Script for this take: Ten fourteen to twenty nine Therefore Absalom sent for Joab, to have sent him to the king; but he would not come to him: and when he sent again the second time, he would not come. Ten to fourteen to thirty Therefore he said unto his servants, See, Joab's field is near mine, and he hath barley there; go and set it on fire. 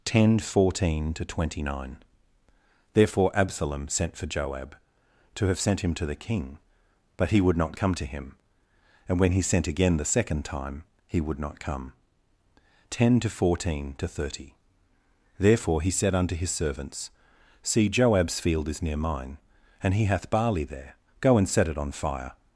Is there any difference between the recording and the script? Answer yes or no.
no